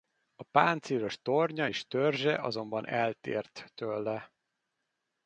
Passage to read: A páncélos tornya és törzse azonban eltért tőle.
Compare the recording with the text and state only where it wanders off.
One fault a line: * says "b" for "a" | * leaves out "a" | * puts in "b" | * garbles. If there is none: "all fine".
all fine